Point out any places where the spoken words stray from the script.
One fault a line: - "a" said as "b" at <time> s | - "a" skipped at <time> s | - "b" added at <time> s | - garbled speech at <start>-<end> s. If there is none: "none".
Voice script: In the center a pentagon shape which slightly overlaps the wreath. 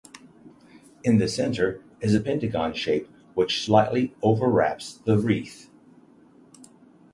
- "is" added at 2.0 s